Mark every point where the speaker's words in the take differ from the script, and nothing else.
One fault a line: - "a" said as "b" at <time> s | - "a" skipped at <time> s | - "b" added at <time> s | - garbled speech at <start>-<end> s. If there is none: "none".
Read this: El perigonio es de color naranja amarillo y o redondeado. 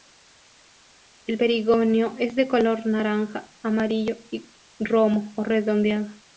- "romo" added at 4.8 s